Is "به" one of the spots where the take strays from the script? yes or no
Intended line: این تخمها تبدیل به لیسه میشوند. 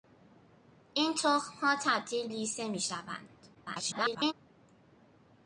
yes